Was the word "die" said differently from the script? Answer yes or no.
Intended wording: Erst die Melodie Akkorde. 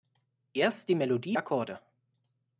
no